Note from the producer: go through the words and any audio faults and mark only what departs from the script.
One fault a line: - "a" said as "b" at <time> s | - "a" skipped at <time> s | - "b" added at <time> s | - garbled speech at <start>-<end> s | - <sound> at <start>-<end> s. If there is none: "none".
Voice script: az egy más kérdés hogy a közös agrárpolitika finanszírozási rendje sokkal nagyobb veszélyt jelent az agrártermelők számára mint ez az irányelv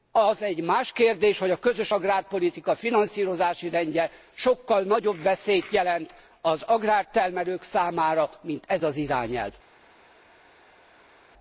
none